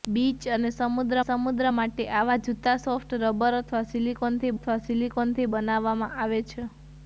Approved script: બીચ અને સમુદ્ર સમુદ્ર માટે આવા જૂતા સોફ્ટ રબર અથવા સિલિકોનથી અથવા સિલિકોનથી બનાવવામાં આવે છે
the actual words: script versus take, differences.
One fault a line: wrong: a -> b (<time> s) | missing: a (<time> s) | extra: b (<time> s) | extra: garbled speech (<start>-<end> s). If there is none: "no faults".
no faults